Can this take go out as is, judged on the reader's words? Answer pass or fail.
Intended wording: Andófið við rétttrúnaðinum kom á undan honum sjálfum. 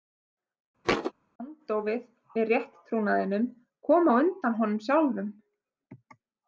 pass